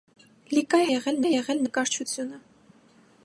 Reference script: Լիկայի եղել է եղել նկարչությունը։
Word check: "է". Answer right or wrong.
right